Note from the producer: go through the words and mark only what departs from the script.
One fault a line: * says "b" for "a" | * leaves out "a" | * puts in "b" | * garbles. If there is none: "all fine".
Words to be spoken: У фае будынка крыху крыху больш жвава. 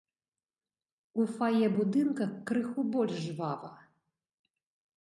* leaves out "крыху"